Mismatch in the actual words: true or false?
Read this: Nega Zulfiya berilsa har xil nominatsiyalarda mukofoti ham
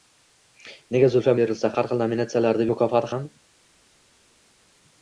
false